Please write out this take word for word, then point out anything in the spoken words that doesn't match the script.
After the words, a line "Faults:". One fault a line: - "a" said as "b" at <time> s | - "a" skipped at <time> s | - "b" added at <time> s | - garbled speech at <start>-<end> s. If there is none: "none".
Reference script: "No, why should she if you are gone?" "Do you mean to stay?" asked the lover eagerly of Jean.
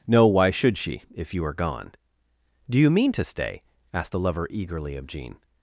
"No, why should she if you are gone?" "Do you mean to stay?" asked the lover eagerly of Jean.
Faults:
none